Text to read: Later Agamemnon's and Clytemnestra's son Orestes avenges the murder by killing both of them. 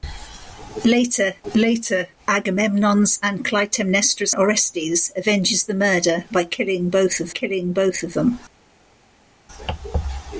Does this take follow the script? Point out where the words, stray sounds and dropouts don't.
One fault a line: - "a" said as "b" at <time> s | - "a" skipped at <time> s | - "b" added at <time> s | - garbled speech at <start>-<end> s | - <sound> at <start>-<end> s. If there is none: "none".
- "later" added at 1.5 s
- "son" skipped at 4.3 s
- "killing both of" added at 7.3 s